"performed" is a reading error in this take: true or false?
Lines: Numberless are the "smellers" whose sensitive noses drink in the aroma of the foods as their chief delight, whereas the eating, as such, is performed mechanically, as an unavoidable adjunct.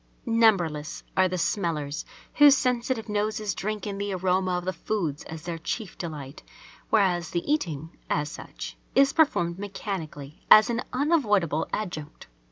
false